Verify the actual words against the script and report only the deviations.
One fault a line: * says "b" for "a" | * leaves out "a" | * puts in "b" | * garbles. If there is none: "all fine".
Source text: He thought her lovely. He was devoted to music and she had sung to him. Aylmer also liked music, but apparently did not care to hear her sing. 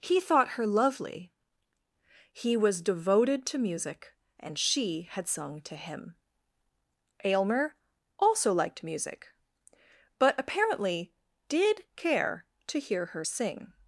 * leaves out "not"